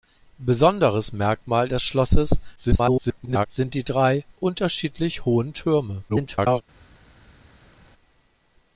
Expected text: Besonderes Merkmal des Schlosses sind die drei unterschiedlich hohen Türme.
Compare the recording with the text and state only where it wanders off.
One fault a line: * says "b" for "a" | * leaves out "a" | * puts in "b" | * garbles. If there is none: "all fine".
* garbles
* garbles